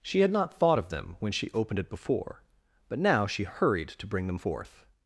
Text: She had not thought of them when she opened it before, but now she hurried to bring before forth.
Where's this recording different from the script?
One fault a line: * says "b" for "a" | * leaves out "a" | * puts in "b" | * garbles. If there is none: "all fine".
* says "them" for "before"